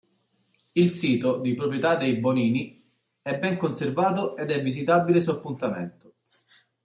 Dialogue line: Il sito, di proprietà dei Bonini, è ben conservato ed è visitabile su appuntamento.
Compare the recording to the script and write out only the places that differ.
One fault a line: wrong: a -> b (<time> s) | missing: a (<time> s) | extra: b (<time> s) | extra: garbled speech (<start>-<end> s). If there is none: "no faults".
no faults